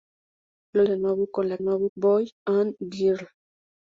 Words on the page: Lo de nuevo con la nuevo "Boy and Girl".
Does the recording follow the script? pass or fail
pass